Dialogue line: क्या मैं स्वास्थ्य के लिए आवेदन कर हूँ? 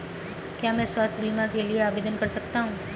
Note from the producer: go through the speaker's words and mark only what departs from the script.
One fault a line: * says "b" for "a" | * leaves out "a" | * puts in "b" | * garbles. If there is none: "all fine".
* puts in "बीमा"
* puts in "सकता"